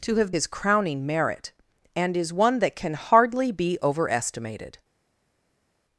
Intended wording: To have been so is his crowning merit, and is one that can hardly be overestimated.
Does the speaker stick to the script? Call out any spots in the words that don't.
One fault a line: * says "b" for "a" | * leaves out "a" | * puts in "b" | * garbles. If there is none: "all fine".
* leaves out "been so is"